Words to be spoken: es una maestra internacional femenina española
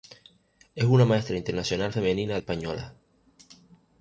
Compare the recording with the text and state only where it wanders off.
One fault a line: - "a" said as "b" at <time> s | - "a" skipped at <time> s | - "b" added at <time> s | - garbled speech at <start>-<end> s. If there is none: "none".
none